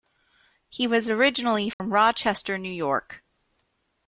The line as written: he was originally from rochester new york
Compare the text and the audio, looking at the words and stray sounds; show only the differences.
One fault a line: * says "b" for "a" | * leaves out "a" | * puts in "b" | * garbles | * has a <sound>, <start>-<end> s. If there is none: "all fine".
* has a dropout, 1.7-1.8 s